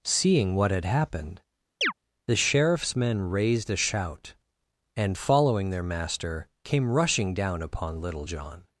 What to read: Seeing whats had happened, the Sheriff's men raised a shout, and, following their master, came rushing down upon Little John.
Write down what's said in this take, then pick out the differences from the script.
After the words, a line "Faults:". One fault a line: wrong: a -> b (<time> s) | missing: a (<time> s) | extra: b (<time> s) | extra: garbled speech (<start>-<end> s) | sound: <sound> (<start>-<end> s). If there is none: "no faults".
Seeing what had happened, the Sheriff's men raised a shout, and, following their master, came rushing down upon Little John.
Faults:
wrong: whats -> what (0.6 s)
sound: chirp (1.8-1.9 s)